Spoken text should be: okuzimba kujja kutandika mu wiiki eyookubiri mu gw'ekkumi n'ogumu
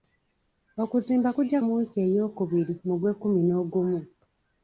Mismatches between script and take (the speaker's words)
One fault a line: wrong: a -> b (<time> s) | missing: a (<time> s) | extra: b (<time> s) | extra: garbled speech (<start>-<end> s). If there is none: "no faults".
missing: kutandika (1.6 s)